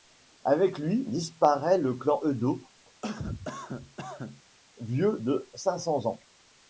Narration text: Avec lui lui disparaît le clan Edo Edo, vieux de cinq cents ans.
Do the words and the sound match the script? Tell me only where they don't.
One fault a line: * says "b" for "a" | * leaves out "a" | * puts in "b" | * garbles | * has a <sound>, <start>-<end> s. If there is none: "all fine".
* leaves out "lui"
* leaves out "Edo"
* has a cough, 3.0-4.4 s